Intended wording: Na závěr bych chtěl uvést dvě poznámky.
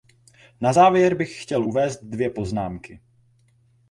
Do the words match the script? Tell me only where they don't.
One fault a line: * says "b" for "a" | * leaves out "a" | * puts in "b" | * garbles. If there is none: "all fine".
all fine